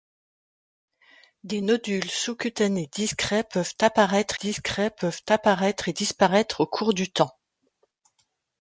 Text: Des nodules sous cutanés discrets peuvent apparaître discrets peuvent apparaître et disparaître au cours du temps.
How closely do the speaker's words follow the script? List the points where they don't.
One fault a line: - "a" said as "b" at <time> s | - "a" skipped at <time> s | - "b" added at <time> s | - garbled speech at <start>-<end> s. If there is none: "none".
none